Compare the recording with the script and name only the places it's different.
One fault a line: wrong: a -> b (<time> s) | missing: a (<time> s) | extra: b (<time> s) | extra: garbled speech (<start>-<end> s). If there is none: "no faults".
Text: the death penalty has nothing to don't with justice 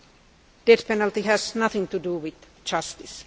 wrong: don't -> do (2.0 s)